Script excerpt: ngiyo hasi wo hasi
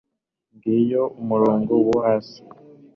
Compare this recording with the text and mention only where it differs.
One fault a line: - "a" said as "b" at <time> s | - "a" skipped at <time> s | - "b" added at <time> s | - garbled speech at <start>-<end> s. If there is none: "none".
- "hasi" said as "umurongo" at 1.2 s